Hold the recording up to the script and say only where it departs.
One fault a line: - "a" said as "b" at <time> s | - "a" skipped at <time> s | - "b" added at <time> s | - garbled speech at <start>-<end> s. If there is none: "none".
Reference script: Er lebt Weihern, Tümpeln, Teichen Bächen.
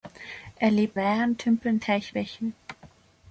none